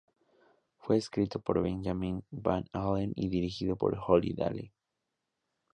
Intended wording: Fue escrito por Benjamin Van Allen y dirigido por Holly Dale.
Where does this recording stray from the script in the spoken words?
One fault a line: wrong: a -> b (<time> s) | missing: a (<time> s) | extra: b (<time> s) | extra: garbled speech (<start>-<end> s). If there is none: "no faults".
no faults